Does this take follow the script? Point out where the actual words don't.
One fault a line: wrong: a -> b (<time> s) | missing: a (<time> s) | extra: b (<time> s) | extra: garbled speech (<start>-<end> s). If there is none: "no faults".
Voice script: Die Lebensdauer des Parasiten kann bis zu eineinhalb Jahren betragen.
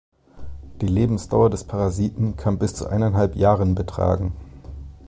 no faults